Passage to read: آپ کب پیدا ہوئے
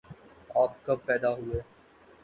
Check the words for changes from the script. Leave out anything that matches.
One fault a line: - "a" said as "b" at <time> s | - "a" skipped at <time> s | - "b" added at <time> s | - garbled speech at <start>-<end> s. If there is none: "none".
none